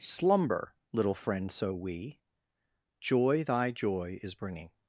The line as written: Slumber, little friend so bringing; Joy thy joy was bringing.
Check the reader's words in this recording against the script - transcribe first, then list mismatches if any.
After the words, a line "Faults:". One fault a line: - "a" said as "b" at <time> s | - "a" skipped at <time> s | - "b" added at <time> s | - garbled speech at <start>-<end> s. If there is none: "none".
Slumber, little friend so wee; Joy thy joy is bringing.
Faults:
- "bringing" said as "wee" at 1.8 s
- "was" said as "is" at 4.2 s